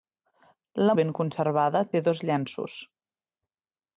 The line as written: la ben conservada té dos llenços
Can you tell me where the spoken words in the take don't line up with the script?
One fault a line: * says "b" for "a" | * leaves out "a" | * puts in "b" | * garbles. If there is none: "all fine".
all fine